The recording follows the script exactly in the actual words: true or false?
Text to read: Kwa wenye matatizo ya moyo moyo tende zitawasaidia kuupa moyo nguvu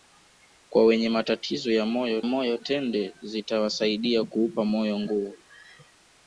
true